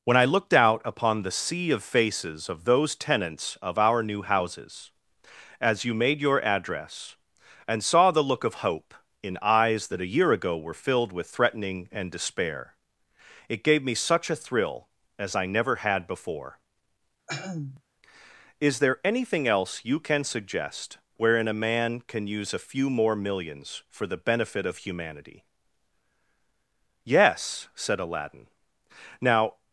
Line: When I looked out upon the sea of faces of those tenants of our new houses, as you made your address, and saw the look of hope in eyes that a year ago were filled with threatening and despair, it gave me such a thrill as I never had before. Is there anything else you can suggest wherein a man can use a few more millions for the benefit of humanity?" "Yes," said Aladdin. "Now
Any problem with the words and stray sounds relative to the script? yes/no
yes